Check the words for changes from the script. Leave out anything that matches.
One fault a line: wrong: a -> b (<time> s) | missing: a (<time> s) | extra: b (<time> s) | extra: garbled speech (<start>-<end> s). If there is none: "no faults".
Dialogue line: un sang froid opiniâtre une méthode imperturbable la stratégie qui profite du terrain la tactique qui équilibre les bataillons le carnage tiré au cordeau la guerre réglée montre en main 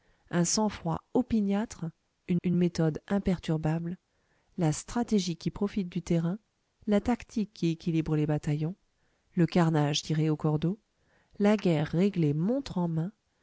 extra: une (2.4 s)